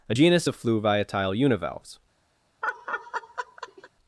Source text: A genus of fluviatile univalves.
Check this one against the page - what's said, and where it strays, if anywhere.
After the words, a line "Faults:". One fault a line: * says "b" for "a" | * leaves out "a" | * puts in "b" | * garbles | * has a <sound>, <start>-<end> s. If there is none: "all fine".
A genus of fluviatile univalves.
Faults:
* has a laugh, 2.6-3.9 s